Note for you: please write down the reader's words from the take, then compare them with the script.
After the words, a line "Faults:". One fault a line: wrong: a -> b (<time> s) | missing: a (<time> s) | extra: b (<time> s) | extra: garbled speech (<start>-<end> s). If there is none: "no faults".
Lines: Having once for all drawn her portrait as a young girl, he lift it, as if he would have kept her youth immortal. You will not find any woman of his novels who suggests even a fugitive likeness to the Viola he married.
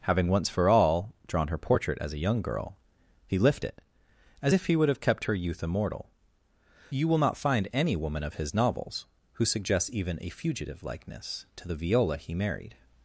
Having once for all drawn her portrait as a young girl, he lift it, as if he would have kept her youth immortal. You will not find any woman of his novels who suggests even a fugitive likeness to the Viola he married.
Faults:
no faults